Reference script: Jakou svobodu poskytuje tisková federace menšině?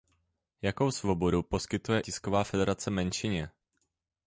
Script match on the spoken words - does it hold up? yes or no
yes